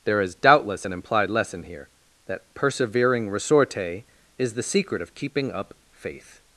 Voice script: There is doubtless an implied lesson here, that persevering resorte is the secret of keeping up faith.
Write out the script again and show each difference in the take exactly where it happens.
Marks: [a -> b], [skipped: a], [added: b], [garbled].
There is doubtless an implied lesson here, that persevering resorte is the secret of keeping up faith.